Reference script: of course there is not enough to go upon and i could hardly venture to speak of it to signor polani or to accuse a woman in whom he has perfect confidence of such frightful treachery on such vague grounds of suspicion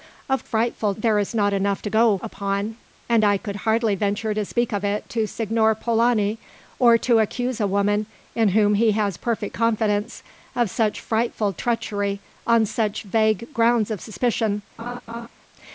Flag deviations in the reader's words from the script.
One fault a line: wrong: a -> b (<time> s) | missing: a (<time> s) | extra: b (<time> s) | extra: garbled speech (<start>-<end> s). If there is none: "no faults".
wrong: course -> frightful (0.4 s)